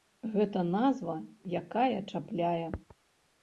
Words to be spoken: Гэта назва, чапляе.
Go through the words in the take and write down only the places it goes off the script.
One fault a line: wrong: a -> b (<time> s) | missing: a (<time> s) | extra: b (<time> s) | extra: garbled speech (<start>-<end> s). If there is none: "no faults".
extra: якая (1.6 s)